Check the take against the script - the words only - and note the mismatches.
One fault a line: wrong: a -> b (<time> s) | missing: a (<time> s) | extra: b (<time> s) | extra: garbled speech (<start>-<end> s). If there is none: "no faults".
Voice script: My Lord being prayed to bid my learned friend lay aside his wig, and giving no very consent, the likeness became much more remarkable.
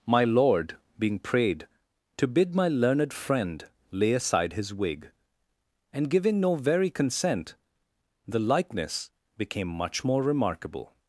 no faults